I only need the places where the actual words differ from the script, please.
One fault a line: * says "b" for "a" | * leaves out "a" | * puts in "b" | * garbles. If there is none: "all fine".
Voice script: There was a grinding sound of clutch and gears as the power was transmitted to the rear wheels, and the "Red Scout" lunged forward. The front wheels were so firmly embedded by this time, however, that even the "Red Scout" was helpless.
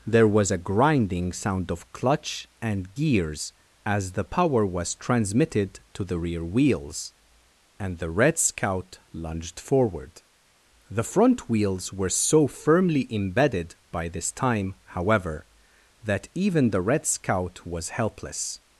all fine